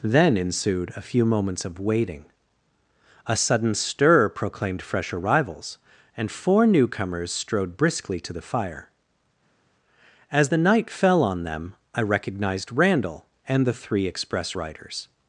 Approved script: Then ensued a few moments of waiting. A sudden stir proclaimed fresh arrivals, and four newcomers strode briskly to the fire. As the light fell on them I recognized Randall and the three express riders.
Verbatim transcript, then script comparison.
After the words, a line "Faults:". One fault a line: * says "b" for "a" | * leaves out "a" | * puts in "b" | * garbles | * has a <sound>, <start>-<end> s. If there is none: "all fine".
Then ensued a few moments of waiting. A sudden stir proclaimed fresh arrivals, and four newcomers strode briskly to the fire. As the night fell on them I recognized Randall and the three express riders.
Faults:
* says "night" for "light"